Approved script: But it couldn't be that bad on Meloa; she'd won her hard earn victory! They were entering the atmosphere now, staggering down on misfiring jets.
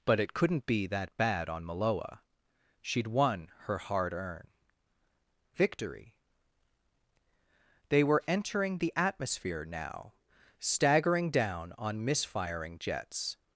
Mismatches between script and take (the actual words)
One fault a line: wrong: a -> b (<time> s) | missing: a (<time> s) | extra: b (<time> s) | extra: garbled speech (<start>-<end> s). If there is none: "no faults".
no faults